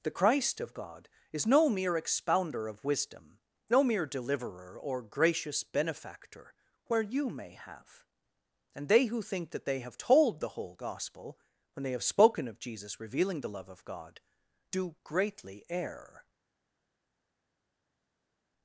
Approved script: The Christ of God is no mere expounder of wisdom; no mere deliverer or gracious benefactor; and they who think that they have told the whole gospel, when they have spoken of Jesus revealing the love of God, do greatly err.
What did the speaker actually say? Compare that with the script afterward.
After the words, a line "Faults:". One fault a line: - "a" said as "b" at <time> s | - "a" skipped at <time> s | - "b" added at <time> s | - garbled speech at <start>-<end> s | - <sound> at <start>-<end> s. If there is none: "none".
The Christ of God is no mere expounder of wisdom; no mere deliverer or gracious benefactor; where you may have and they who think that they have told the whole gospel, when they have spoken of Jesus revealing the love of God, do greatly err.
Faults:
- "where you may have" added at 6.9 s